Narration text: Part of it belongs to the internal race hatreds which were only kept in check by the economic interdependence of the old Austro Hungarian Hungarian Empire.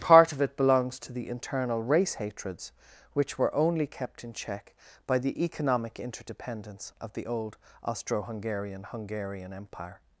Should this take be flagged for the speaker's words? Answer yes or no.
no